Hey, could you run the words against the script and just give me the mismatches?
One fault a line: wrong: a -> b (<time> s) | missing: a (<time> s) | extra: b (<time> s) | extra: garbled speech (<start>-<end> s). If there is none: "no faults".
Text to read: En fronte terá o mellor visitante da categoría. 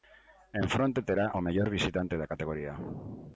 no faults